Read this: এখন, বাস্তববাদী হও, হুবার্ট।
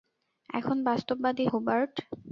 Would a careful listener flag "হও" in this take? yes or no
yes